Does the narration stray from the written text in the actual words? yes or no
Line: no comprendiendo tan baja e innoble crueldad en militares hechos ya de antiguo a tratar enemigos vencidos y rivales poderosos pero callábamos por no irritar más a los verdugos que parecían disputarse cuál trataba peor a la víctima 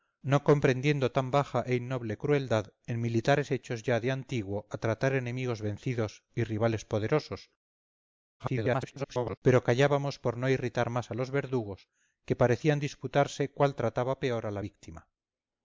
yes